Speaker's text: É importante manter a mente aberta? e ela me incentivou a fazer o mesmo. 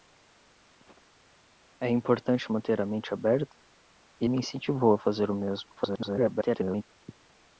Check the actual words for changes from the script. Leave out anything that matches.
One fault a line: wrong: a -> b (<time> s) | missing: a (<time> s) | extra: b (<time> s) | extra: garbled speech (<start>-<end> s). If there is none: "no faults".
missing: ela (4.3 s)
extra: garbled speech (5.8-6.8 s)